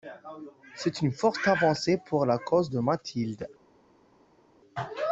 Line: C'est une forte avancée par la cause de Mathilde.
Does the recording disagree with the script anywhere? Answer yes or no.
yes